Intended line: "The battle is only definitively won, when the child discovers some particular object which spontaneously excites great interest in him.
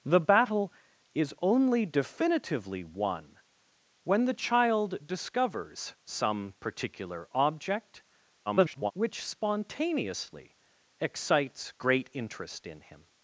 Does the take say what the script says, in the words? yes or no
no